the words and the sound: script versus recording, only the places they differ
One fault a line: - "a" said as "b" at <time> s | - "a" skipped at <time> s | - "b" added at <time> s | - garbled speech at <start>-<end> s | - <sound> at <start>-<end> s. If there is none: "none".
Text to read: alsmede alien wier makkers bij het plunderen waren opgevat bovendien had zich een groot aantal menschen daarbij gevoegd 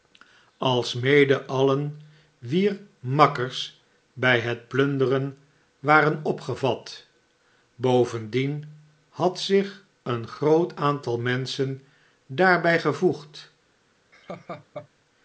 - laugh at 14.1-14.9 s